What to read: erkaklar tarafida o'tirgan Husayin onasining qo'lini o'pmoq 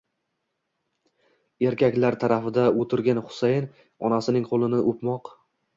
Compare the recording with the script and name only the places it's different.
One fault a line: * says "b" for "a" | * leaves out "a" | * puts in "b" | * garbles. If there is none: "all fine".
all fine